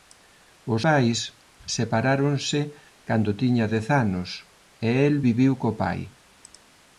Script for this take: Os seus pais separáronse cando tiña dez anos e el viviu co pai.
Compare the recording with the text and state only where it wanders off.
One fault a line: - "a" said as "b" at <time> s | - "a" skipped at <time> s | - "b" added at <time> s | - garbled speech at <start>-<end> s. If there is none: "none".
- "seus" skipped at 0.8 s